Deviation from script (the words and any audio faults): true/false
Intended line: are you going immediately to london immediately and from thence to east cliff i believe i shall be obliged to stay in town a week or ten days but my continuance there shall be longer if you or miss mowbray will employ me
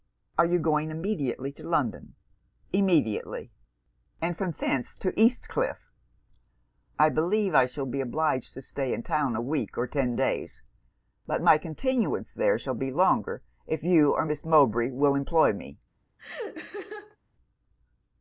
true